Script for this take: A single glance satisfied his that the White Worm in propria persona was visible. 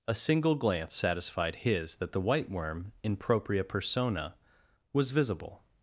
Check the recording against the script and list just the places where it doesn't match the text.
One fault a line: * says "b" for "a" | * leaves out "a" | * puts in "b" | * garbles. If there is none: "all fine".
all fine